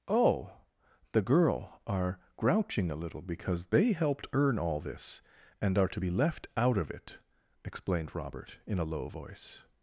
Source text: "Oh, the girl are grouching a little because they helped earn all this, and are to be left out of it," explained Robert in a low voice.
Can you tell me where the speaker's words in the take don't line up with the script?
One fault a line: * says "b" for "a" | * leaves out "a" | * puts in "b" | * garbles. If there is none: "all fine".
all fine